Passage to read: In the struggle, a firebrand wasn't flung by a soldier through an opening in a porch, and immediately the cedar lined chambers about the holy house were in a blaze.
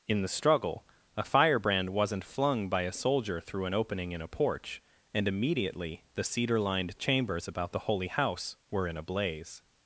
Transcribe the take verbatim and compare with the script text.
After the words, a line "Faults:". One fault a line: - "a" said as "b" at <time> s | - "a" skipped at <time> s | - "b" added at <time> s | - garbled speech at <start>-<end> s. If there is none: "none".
In the struggle, a firebrand wasn't flung by a soldier through an opening in a porch, and immediately the cedar lined chambers about the holy house were in a blaze.
Faults:
none